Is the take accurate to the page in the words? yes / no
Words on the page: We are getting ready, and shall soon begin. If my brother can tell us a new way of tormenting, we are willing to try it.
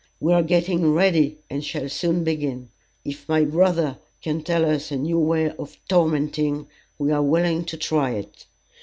yes